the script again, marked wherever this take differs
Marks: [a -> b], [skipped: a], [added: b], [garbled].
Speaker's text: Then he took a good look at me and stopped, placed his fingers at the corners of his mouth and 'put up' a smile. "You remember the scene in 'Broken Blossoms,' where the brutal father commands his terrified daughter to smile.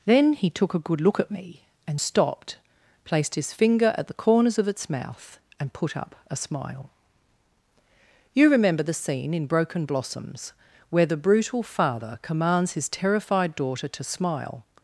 Then he took a good look at me and stopped, placed his [fingers -> finger] at the corners of [his -> its] mouth and 'put up' a smile. "You remember the scene in 'Broken Blossoms,' where the brutal father commands his terrified daughter to smile.